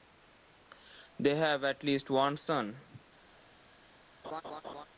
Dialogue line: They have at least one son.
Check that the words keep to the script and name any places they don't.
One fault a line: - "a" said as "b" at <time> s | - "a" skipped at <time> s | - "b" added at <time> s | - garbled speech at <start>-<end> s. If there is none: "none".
none